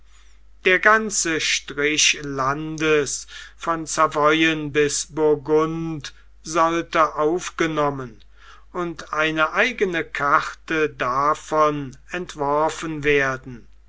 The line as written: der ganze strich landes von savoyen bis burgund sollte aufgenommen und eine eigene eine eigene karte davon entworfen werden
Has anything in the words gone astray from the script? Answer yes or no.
yes